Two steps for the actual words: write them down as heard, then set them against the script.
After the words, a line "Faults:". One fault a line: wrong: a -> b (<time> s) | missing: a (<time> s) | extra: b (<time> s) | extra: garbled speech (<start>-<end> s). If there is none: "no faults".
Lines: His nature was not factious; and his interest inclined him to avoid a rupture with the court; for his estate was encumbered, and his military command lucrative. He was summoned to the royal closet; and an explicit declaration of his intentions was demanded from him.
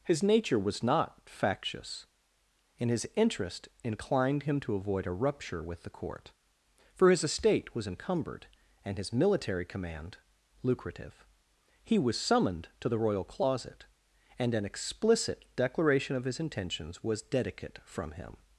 His nature was not factious; and his interest inclined him to avoid a rupture with the court; for his estate was encumbered, and his military command lucrative. He was summoned to the royal closet; and an explicit declaration of his intentions was dedicate from him.
Faults:
wrong: demanded -> dedicate (17.2 s)